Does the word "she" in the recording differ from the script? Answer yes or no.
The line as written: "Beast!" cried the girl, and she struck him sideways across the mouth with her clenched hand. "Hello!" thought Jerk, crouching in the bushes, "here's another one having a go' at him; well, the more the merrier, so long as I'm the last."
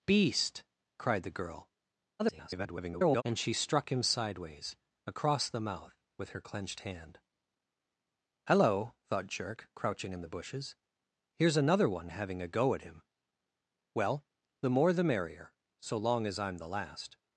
no